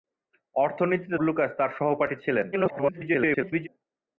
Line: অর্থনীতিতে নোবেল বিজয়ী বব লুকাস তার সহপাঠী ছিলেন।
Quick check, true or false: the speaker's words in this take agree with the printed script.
false